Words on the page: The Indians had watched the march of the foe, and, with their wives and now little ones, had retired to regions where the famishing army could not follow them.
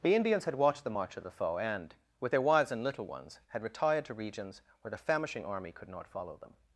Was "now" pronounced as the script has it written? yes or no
no